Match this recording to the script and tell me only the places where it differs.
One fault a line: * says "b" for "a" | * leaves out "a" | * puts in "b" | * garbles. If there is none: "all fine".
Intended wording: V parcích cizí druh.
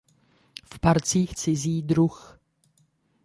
all fine